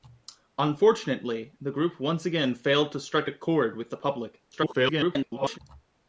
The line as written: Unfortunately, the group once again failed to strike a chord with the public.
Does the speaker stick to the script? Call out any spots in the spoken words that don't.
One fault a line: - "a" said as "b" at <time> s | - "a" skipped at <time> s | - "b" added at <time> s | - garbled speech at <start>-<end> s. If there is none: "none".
- garbled speech at 4.5-5.6 s